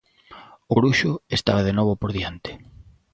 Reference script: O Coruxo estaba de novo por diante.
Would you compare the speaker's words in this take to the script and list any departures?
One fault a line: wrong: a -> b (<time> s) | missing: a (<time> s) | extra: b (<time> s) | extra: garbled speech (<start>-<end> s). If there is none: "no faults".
no faults